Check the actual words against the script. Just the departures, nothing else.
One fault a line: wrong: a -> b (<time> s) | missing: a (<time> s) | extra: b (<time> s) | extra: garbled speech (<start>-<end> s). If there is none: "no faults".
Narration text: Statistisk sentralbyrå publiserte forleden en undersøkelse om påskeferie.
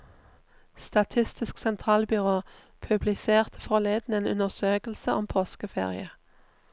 no faults